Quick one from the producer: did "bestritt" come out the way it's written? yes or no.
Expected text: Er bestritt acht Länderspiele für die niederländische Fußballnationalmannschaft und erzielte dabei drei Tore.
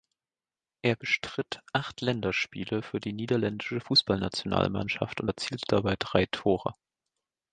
yes